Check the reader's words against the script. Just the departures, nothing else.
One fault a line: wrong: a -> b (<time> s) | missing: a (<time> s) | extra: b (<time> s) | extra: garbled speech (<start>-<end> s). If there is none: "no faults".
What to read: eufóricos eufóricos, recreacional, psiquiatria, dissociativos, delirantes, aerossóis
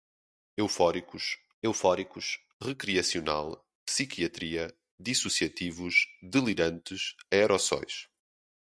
no faults